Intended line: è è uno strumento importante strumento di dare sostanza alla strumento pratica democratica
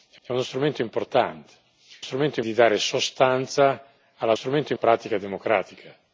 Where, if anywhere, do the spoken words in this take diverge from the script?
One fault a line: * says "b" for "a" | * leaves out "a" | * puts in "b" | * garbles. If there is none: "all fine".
all fine